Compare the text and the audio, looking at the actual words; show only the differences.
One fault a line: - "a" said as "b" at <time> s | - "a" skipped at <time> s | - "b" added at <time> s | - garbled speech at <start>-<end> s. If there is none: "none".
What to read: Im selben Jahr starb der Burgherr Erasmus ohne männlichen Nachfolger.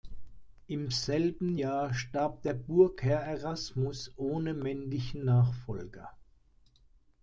none